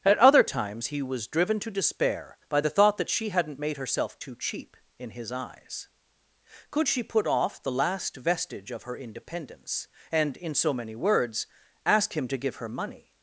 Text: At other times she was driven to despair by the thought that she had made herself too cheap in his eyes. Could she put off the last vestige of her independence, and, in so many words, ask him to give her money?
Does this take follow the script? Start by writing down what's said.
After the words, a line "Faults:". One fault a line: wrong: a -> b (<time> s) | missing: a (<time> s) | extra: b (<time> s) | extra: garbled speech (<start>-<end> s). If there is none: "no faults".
At other times he was driven to despair by the thought that she hadn't made herself too cheap in his eyes. Could she put off the last vestige of her independence, and, in so many words, ask him to give her money?
Faults:
wrong: she -> he (0.9 s)
wrong: had -> hadn't (3.3 s)